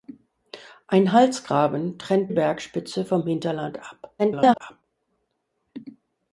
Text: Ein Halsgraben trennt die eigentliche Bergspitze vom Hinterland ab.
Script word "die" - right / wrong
wrong